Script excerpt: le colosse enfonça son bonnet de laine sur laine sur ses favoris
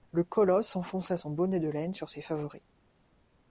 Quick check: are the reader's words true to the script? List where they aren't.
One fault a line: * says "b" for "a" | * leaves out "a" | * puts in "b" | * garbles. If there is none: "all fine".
* leaves out "laine sur"